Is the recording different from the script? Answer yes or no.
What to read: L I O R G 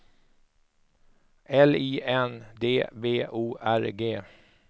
yes